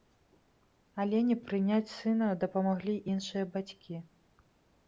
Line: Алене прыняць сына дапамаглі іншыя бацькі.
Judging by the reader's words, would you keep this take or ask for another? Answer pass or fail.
pass